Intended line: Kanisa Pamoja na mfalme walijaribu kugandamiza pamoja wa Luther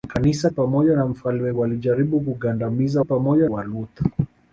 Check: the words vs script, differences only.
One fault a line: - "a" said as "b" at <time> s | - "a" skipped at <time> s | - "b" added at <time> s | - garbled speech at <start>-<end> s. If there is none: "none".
none